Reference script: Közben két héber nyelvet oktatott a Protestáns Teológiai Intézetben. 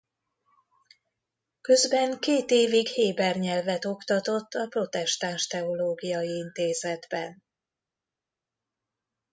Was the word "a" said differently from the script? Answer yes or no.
no